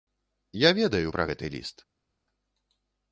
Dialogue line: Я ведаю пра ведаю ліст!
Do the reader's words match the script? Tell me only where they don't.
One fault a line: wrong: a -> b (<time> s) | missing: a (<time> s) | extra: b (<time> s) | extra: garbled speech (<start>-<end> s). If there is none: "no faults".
wrong: ведаю -> гэты (1.3 s)